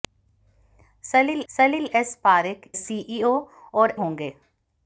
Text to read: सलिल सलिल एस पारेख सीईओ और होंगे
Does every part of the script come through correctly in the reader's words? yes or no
yes